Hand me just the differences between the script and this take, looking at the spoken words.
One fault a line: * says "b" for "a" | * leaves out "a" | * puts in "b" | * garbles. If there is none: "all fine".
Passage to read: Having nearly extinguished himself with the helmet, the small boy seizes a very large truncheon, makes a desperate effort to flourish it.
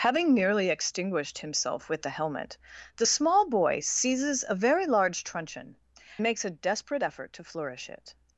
all fine